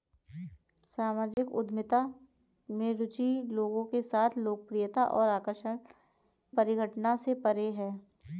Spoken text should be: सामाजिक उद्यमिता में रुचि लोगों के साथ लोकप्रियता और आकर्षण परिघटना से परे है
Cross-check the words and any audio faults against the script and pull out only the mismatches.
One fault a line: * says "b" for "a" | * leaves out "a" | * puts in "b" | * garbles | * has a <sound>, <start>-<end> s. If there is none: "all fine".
* has a dropout, 1.3-1.4 s